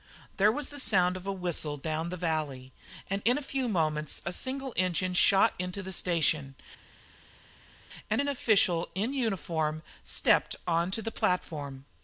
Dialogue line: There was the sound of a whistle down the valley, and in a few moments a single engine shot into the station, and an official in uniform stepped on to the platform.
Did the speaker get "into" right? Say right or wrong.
right